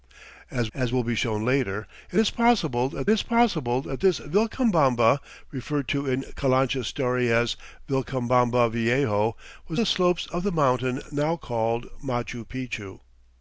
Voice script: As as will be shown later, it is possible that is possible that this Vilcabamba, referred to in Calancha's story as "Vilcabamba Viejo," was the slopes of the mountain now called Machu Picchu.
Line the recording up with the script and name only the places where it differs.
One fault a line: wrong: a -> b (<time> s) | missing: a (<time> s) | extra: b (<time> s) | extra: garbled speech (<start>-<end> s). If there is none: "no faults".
no faults